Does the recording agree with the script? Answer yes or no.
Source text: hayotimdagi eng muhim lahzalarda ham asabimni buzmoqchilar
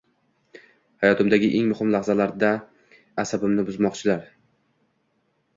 no